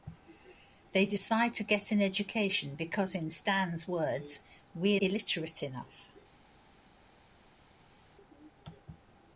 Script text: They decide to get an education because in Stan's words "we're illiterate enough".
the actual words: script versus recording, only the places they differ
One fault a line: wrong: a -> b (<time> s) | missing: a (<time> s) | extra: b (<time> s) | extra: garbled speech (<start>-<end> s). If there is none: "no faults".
no faults